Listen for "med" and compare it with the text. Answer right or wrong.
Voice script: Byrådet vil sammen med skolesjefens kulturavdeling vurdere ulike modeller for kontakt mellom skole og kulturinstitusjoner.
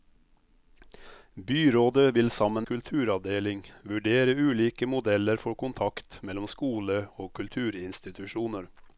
wrong